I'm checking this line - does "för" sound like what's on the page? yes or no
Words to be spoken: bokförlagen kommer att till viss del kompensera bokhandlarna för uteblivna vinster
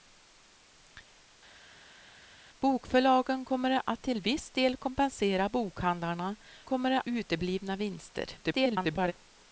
no